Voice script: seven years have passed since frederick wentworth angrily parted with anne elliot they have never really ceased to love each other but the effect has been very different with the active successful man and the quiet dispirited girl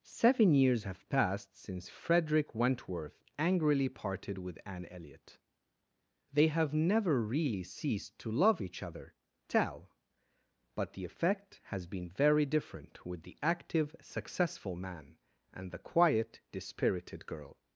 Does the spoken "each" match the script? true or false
true